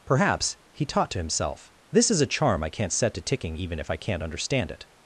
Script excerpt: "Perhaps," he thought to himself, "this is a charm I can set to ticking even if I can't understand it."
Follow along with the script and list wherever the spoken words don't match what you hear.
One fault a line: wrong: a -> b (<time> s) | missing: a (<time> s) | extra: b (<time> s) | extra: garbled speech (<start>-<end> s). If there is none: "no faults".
wrong: thought -> taught (0.8 s)
wrong: can -> can't (2.7 s)